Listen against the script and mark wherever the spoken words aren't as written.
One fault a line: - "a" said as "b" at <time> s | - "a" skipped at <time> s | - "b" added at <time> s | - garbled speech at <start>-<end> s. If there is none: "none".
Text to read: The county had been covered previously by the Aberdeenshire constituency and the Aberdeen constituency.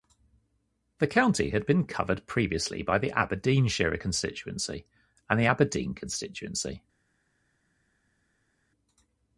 none